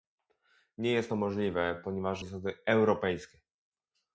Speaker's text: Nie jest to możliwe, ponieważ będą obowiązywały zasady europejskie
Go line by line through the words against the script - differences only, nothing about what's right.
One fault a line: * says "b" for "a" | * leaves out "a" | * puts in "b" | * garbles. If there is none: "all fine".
* leaves out "będą obowiązywały"